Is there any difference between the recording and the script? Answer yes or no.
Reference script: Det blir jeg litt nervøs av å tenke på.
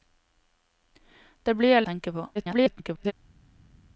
yes